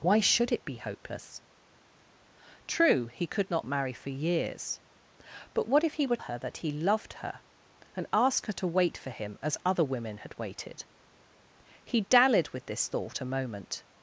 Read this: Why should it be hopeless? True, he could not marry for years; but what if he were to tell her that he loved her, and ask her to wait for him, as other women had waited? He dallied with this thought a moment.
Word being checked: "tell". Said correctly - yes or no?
no